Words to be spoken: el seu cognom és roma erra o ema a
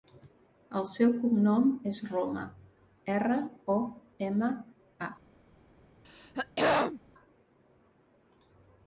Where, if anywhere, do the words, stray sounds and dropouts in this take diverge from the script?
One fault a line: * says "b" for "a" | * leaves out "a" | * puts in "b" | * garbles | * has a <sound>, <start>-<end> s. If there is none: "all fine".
* has a throat clearing, 6.0-7.0 s